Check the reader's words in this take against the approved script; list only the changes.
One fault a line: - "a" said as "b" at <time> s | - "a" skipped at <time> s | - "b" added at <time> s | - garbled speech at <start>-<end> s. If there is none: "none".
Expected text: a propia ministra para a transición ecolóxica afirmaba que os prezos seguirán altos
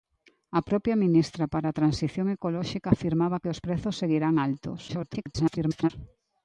- garbled speech at 4.9-5.9 s